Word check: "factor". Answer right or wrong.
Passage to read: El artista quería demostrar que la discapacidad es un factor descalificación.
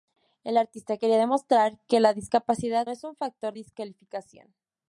right